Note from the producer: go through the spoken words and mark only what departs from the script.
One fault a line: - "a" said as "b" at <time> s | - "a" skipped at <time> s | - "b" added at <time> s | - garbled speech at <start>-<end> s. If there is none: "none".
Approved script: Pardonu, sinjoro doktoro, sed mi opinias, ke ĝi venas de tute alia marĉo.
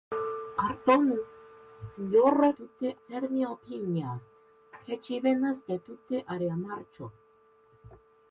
- "doktoro" said as "tute" at 2.6 s